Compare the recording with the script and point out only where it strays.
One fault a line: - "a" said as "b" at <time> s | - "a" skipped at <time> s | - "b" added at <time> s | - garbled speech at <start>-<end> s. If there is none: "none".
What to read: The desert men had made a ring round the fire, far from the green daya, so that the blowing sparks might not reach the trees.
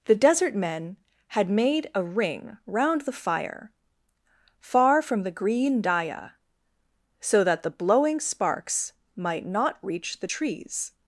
none